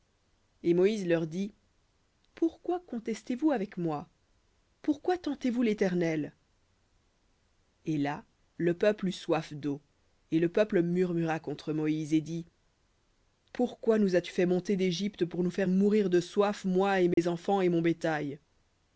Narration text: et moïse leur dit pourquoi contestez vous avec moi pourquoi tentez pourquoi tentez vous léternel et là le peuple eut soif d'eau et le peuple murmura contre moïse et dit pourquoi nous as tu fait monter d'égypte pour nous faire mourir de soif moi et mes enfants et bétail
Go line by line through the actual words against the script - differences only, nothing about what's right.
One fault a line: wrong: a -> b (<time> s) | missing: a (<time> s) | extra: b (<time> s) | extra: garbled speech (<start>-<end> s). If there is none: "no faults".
missing: pourquoi tentez (5.5 s)
extra: mon (17.7 s)